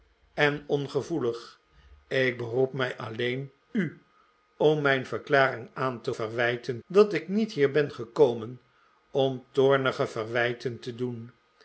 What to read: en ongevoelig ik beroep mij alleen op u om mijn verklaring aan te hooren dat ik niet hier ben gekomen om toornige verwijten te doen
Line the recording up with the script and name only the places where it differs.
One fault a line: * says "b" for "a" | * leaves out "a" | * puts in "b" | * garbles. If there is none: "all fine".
* leaves out "op"
* says "verwijten" for "hooren"